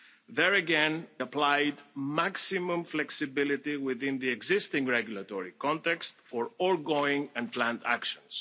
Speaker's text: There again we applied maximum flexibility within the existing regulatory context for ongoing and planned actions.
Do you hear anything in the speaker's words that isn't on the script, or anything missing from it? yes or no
yes